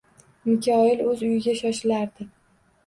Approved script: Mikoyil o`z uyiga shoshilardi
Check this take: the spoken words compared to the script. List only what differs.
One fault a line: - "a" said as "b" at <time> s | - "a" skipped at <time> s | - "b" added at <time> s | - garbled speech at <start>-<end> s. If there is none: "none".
none